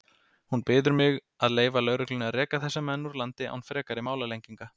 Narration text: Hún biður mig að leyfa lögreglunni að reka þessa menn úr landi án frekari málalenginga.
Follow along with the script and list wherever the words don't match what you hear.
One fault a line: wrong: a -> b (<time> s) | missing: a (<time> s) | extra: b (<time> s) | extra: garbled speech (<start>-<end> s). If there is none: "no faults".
no faults